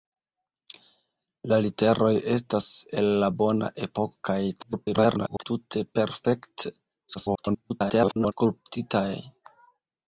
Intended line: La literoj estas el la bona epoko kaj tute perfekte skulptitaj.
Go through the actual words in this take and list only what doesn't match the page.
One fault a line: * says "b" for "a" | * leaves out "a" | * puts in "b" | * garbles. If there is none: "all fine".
* garbles
* garbles